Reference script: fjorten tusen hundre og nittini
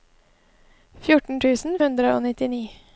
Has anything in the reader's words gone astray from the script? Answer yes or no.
no